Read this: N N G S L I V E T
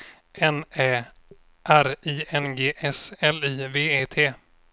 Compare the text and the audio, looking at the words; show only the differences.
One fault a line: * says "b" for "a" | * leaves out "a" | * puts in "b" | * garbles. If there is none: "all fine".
* puts in "Ä R I"